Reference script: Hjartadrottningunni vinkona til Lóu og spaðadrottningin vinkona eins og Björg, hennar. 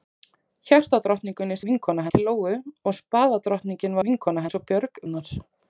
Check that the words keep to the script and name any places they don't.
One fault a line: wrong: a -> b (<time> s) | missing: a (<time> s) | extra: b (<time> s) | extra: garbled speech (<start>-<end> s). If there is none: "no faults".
no faults